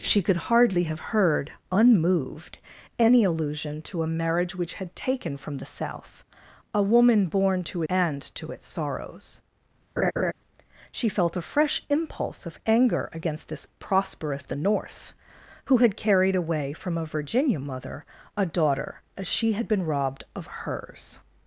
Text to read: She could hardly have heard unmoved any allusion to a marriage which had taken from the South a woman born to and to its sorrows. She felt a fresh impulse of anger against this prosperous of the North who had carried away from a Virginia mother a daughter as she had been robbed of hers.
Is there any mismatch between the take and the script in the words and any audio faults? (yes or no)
yes